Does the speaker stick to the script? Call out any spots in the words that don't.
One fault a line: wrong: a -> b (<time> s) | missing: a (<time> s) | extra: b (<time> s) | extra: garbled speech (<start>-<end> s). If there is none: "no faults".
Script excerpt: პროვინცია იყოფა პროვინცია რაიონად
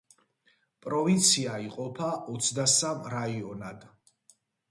wrong: პროვინცია -> ოცდასამ (2.4 s)